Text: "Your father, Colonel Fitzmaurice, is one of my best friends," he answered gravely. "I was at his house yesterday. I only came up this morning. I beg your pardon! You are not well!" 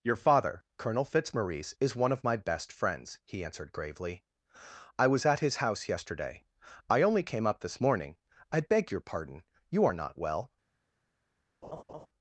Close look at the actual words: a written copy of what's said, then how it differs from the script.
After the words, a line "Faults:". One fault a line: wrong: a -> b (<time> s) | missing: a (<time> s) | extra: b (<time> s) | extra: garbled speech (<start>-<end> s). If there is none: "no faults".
"Your father, Colonel Fitzmaurice, is one of my best friends," he answered gravely. "I was at his house yesterday. I only came up this morning. I beg your pardon! You are not well!"
Faults:
no faults